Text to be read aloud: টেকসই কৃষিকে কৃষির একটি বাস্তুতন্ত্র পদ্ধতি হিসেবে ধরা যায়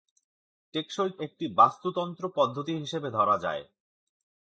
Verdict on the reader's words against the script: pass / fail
fail